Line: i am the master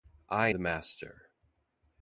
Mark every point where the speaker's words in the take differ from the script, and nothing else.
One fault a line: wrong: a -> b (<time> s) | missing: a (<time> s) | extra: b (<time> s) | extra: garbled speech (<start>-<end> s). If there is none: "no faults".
missing: am (0.5 s)